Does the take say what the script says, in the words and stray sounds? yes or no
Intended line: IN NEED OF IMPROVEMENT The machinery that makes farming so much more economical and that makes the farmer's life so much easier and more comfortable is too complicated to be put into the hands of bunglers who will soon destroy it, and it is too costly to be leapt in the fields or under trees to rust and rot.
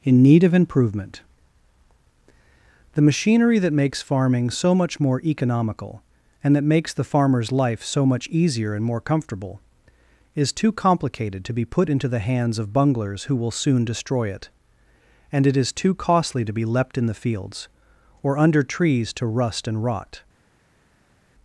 yes